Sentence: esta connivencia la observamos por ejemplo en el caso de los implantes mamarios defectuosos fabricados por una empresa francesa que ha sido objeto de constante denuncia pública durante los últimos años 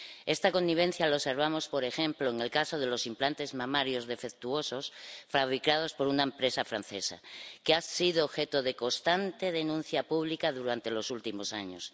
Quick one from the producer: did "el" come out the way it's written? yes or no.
yes